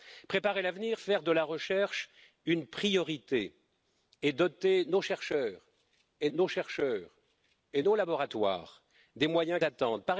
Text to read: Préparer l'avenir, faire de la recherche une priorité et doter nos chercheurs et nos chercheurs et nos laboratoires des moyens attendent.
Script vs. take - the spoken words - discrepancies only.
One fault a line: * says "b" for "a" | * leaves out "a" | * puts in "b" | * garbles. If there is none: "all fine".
all fine